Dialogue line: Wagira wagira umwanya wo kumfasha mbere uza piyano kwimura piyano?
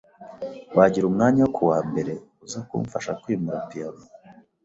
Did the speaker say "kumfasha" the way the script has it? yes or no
no